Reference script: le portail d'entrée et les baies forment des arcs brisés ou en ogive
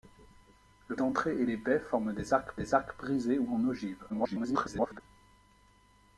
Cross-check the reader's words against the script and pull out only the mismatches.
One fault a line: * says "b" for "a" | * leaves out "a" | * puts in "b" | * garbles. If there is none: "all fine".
* leaves out "portail"
* puts in "des arcs"
* garbles